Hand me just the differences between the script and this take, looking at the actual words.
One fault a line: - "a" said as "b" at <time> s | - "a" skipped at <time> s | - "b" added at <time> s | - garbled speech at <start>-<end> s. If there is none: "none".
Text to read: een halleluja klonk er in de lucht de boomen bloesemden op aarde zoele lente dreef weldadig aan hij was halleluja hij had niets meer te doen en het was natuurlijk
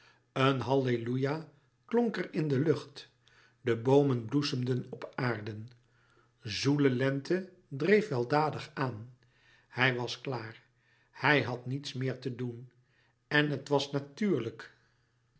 - "halleluja" said as "klaar" at 10.2 s